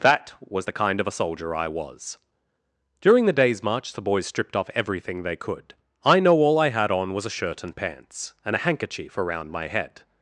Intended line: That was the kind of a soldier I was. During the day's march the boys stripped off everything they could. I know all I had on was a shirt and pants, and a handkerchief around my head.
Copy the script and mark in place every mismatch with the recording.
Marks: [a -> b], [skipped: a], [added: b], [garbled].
That was the kind of a soldier I was. During the day's march the boys stripped off everything they could. I know all I had on was a shirt and pants, and a handkerchief around my head.